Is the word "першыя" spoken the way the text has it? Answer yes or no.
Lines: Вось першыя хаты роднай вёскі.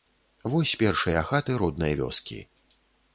yes